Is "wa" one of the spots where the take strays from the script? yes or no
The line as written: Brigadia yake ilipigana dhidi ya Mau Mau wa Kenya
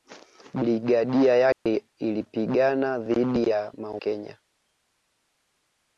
yes